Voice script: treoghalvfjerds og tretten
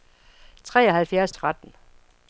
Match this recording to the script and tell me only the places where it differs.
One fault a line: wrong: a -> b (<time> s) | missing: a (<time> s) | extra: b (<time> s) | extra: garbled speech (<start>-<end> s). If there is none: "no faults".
no faults